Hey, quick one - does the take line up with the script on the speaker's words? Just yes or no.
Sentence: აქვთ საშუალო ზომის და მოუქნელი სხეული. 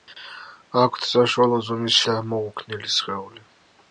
yes